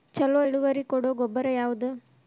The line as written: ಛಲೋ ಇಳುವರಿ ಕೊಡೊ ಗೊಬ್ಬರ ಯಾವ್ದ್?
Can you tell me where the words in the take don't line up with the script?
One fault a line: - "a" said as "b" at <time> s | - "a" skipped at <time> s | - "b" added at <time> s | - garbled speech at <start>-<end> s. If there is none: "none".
none